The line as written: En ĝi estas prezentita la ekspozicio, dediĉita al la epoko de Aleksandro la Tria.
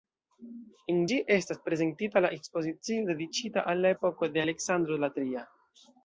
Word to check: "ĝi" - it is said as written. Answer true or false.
true